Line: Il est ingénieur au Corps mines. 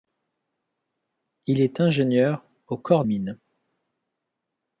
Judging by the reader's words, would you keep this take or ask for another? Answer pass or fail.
pass